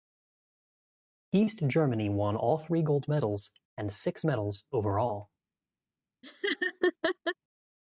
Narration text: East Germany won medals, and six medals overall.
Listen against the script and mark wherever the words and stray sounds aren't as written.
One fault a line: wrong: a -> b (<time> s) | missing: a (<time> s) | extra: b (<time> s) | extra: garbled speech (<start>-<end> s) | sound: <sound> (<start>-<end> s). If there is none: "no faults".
extra: all three gold (2.4 s)
sound: laugh (6.2-7.3 s)